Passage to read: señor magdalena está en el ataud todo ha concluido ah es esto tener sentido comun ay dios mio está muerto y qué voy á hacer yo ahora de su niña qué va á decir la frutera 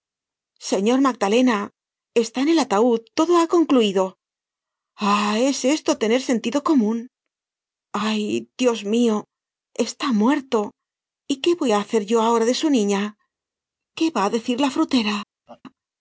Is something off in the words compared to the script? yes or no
no